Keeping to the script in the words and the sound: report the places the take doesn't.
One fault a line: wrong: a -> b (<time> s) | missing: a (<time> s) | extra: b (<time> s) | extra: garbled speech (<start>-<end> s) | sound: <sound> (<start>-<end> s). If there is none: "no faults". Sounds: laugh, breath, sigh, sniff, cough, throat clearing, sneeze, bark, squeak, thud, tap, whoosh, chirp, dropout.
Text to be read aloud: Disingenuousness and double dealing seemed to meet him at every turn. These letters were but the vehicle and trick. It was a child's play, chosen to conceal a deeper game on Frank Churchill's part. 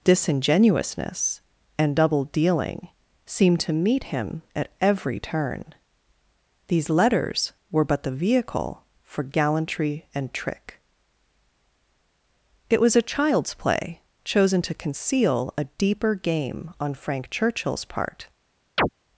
extra: for gallantry (9.1 s)
sound: chirp (18.8-18.9 s)